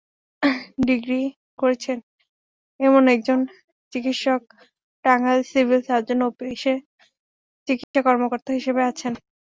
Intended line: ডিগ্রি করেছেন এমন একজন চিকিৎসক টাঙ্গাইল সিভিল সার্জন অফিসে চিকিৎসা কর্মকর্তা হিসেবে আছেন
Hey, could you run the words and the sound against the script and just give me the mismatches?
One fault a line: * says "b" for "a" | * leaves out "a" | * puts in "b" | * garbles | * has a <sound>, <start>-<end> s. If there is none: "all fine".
* has a dropout, 7.8-7.9 s